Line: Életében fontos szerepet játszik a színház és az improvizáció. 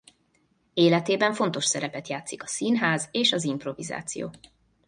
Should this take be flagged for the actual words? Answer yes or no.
no